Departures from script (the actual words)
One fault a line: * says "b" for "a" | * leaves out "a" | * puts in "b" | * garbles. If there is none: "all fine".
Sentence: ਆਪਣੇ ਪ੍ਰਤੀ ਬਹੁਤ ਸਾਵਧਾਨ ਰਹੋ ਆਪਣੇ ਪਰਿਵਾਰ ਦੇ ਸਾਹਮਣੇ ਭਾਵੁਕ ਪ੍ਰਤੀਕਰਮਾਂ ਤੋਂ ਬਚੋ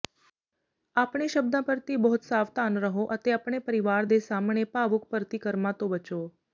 * puts in "ਸ਼ਬਦਾਂ"
* puts in "ਅਤੇ"